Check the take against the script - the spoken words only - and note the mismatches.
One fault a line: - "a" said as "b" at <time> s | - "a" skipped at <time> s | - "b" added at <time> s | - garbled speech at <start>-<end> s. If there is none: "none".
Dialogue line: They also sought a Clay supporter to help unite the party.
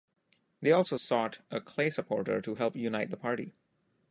none